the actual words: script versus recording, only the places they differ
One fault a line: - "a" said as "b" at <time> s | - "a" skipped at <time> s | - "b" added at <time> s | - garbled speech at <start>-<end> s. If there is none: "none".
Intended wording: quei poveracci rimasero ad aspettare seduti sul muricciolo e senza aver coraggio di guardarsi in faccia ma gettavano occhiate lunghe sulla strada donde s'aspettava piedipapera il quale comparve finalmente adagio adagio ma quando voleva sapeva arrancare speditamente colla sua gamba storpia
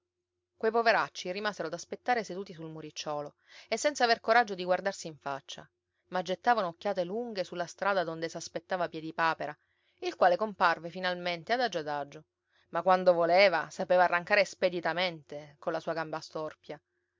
none